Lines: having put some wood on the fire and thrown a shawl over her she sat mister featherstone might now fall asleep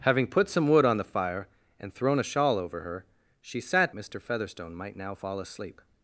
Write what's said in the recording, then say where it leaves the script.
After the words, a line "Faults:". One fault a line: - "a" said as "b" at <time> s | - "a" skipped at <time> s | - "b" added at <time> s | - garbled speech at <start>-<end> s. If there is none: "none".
having put some wood on the fire and thrown a shawl over her she sat mister featherstone might now fall asleep
Faults:
none